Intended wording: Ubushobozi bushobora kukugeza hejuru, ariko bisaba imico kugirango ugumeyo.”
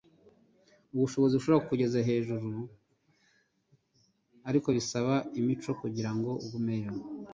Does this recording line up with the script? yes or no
yes